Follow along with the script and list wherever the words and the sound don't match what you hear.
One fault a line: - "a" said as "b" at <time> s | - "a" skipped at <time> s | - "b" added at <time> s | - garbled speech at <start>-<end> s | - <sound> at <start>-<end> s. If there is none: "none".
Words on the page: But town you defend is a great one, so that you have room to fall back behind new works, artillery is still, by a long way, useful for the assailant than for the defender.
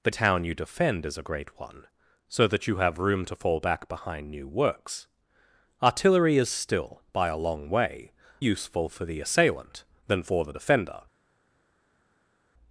none